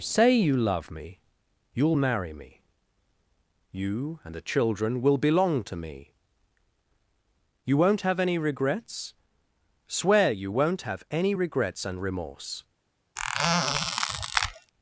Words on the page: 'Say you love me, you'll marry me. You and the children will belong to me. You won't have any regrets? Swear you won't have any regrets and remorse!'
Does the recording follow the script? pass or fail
pass